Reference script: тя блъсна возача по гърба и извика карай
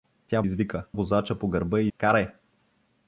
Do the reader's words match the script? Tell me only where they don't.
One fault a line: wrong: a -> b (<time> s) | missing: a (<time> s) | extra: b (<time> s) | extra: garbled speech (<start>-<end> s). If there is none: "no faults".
wrong: блъсна -> извика (0.4 s)
missing: извика (1.9 s)